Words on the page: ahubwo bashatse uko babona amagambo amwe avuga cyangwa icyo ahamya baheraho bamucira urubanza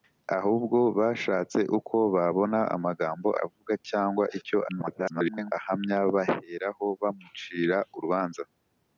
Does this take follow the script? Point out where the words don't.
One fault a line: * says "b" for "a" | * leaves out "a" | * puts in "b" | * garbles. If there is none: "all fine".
* leaves out "amwe"
* garbles